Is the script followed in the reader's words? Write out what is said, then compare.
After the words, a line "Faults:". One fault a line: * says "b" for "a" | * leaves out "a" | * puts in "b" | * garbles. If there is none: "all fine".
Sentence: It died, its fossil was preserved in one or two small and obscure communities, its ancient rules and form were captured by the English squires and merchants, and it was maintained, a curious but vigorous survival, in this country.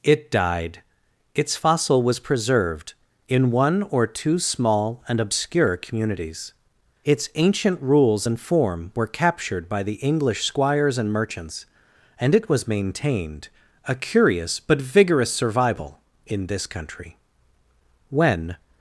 It died, its fossil was preserved in one or two small and obscure communities, its ancient rules and form were captured by the English squires and merchants, and it was maintained, a curious but vigorous survival, in this country. When
Faults:
* puts in "When"